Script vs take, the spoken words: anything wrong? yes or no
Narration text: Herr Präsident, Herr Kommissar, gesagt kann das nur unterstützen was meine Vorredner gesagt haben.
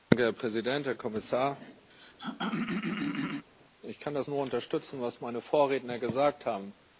yes